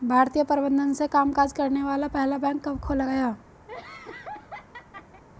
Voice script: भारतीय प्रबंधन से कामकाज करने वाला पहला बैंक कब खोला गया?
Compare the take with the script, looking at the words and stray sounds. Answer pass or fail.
fail